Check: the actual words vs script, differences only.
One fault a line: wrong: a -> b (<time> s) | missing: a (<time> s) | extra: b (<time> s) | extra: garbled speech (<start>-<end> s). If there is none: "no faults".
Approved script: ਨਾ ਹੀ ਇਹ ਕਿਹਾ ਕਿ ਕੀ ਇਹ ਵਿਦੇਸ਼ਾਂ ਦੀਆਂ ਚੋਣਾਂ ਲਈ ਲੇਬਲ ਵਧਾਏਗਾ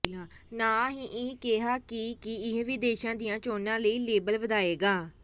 no faults